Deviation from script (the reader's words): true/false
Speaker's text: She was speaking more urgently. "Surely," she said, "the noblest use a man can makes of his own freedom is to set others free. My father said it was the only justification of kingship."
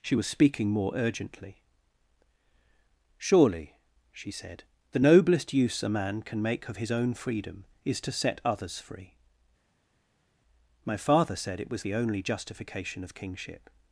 true